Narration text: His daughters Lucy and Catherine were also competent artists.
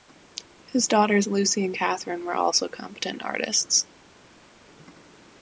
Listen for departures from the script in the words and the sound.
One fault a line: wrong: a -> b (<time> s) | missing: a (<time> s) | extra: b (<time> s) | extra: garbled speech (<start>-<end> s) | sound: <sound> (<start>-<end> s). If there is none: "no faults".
no faults